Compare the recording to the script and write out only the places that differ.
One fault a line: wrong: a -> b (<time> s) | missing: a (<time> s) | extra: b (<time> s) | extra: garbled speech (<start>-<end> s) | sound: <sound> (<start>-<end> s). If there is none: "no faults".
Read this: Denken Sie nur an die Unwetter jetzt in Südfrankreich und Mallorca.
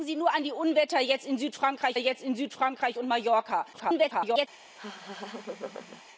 extra: jetzt in Südfrankreich (1.9 s)
extra: garbled speech (3.7-4.5 s)
sound: laugh (4.8-6.0 s)